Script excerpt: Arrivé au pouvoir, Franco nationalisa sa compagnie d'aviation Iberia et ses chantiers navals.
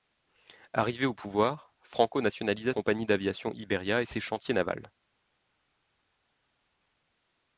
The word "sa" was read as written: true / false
false